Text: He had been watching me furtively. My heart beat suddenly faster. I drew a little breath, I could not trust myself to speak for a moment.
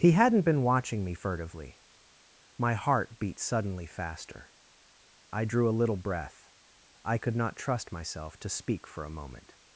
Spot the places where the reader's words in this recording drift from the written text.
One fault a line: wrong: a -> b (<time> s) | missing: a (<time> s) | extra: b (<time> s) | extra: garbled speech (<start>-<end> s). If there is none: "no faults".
wrong: had -> hadn't (0.1 s)